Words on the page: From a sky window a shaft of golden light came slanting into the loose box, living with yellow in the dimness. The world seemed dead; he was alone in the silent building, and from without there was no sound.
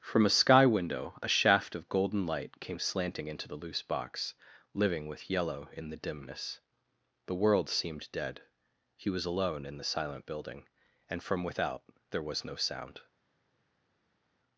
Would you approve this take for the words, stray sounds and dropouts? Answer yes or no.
yes